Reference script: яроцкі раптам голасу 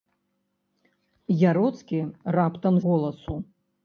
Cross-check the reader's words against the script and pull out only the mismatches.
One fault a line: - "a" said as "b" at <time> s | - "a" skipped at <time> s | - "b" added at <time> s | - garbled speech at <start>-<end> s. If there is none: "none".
none